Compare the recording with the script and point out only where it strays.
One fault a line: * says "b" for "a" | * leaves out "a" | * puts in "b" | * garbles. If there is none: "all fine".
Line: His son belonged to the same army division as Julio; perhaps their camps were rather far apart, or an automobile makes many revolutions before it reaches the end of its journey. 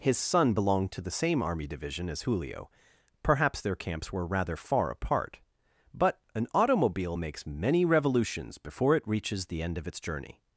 * says "but" for "or"